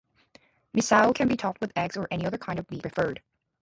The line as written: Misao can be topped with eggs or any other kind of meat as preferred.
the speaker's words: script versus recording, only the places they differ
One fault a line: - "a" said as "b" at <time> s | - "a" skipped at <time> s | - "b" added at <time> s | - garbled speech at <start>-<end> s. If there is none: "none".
- "as" skipped at 2.8 s